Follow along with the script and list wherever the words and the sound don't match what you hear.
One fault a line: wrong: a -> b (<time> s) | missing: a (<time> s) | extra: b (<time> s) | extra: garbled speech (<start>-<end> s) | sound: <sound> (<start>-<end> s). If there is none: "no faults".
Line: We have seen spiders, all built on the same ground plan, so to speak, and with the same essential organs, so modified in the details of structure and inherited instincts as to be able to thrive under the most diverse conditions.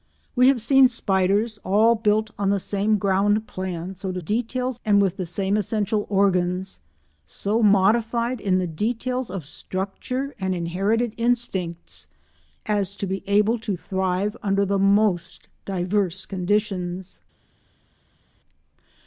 wrong: speak -> details (4.2 s)